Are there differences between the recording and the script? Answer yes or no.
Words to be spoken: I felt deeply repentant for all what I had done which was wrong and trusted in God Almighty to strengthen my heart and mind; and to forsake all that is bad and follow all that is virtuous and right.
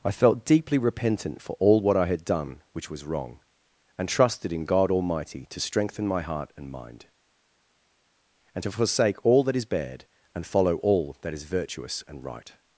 no